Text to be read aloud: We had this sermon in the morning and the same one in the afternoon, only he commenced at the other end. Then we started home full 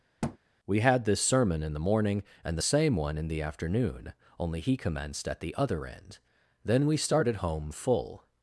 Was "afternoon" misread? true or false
false